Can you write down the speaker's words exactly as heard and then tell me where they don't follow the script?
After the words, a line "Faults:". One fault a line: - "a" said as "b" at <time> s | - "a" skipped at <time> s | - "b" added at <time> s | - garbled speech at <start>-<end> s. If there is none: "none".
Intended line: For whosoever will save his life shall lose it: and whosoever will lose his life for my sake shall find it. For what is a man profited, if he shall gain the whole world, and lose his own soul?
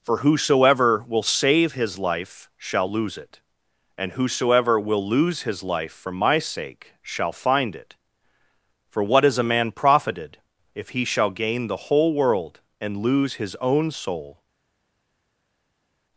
For whosoever will save his life shall lose it: and whosoever will lose his life for my sake shall find it. For what is a man profited, if he shall gain the whole world, and lose his own soul?
Faults:
none